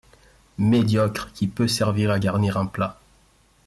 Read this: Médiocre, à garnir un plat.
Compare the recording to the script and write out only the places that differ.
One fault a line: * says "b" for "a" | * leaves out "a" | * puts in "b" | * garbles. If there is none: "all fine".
* puts in "qui peut servir"